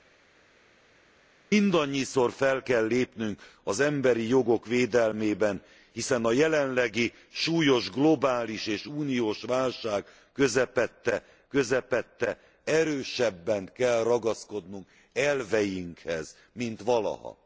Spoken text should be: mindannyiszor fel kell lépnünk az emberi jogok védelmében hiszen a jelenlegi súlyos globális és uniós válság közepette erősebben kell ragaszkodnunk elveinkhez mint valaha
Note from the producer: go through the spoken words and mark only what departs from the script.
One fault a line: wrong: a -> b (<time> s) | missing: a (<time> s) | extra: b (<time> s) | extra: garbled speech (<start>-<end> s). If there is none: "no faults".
extra: közepette (11.5 s)